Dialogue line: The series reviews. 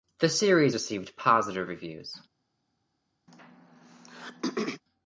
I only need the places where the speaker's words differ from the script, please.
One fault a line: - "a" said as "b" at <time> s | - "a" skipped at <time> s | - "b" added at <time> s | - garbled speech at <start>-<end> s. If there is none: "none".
- "received positive" added at 0.7 s